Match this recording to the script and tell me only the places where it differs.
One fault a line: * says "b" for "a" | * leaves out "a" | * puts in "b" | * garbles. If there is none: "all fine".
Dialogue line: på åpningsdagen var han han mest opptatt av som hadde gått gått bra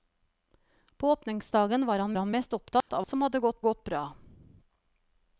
all fine